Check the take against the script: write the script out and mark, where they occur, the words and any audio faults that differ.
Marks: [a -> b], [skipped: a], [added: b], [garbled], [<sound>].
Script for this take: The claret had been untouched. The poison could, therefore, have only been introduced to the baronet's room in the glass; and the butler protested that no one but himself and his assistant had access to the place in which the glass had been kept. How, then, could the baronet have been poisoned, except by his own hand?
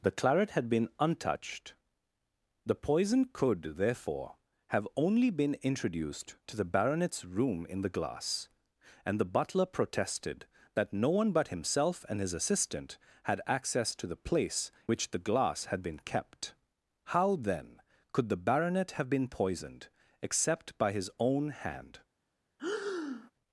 The claret had been untouched. The poison could, therefore, have only been introduced to the baronet's room in the glass; and the butler protested that no one but himself and his assistant had access to the place [skipped: in] which the glass had been kept. How, then, could the baronet have been poisoned, except by his own hand? [breath]